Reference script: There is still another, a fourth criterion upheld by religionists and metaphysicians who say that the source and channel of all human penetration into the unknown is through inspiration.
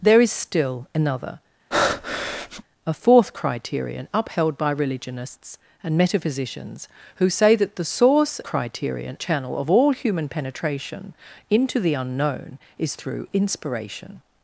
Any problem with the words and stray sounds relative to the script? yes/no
yes